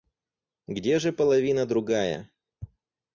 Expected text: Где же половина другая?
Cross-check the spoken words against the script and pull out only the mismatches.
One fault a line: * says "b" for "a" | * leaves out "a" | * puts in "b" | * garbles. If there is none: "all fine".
all fine